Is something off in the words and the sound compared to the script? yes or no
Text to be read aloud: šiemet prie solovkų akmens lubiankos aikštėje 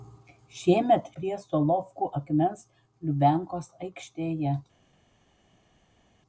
no